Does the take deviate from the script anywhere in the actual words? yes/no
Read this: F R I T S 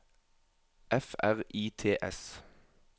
no